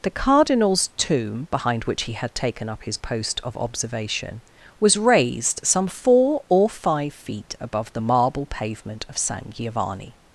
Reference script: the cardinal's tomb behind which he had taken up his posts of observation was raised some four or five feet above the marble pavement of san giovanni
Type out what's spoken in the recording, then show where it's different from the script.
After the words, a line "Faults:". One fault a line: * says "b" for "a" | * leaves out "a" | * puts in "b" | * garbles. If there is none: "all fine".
the cardinal's tomb behind which he had taken up his post of observation was raised some four or five feet above the marble pavement of san giovanni
Faults:
* says "post" for "posts"